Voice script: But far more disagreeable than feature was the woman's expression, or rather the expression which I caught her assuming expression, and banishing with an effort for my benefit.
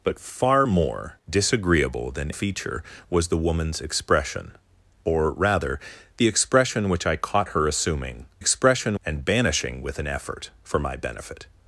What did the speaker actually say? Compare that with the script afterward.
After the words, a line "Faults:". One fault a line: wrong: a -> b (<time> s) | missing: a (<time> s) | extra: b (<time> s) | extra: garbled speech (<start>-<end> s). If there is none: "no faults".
But far more disagreeable than feature was the woman's expression, or rather the expression which I caught her assuming expression, and banishing with an effort for my benefit.
Faults:
no faults